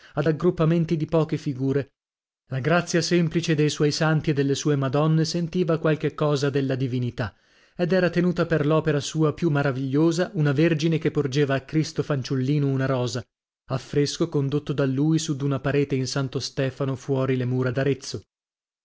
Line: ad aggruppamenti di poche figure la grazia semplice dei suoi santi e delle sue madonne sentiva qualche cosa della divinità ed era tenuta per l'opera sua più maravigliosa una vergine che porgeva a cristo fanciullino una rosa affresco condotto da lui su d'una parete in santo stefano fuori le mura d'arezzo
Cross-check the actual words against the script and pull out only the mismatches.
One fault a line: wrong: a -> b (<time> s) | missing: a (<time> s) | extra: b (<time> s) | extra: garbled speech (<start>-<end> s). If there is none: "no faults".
no faults